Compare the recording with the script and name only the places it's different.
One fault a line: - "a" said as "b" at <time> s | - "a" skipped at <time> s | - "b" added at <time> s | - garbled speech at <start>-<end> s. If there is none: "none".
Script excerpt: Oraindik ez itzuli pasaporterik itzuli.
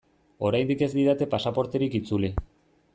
- "itzuli" said as "didate" at 0.9 s